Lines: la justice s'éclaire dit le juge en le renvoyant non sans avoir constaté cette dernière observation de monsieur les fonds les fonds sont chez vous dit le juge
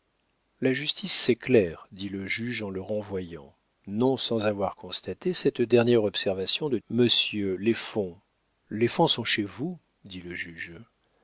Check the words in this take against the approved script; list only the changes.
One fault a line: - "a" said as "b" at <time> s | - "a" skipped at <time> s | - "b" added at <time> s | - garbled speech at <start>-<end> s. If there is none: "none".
none